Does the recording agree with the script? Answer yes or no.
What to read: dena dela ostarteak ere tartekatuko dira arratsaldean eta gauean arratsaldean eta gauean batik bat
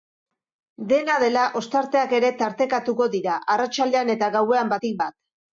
no